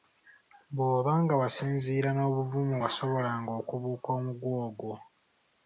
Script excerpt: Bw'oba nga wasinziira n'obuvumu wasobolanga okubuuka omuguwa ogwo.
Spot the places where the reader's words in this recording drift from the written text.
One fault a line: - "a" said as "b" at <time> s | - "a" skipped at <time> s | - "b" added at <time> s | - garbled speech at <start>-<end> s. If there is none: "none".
none